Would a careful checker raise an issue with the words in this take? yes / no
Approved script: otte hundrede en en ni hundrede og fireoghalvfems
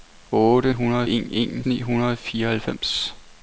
no